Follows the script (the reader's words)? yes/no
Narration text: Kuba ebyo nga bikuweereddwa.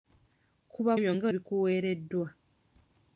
yes